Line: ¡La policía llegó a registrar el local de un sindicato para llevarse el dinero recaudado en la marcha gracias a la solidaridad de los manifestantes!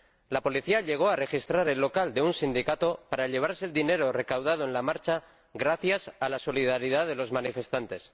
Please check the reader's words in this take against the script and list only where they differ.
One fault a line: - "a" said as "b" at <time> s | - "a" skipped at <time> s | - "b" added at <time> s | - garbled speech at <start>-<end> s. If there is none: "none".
none